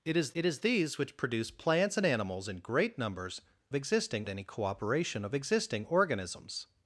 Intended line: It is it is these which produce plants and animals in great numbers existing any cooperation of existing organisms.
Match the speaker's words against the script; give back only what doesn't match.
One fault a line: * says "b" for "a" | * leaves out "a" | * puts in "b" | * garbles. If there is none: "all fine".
all fine